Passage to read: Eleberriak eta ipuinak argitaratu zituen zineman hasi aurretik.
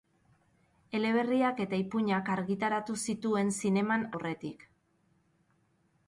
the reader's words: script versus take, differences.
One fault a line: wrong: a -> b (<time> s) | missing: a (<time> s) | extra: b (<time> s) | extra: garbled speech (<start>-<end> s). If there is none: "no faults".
missing: hasi (4.1 s)